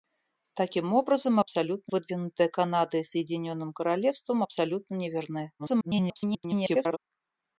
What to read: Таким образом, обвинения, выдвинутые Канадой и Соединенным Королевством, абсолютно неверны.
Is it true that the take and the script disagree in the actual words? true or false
true